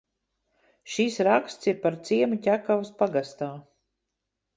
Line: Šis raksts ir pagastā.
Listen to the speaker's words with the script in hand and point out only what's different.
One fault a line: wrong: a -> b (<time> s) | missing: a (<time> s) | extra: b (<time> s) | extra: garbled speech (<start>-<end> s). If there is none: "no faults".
extra: par ciemu Ķekavas (1.9 s)